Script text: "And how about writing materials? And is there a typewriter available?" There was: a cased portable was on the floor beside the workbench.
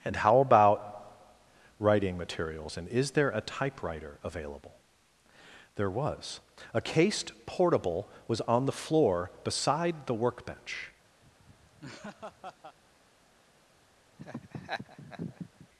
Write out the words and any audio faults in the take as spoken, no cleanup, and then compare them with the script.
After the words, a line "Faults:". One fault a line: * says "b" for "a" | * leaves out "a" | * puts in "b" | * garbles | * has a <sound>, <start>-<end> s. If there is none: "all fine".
"And how about writing materials? And is there a typewriter available?" There was: a cased portable was on the floor beside the workbench.
Faults:
* has a laugh, 11.2-12.8 s
* has a laugh, 14.2-15.7 s